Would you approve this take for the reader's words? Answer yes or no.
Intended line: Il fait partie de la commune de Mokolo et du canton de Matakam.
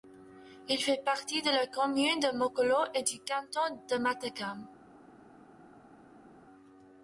yes